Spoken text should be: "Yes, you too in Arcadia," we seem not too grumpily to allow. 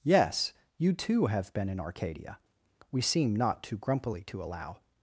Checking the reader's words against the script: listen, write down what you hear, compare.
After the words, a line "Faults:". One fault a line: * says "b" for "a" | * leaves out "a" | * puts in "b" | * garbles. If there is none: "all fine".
"Yes, you too have been in Arcadia," we seem not too grumpily to allow.
Faults:
* puts in "have been"